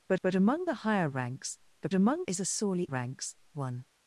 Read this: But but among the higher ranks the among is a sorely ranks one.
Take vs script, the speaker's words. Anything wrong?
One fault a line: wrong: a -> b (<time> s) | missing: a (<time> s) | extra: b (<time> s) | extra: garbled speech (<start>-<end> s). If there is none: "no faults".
no faults